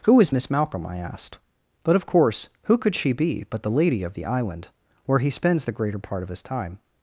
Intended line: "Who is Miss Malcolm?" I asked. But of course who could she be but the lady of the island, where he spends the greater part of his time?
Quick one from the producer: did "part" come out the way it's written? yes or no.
yes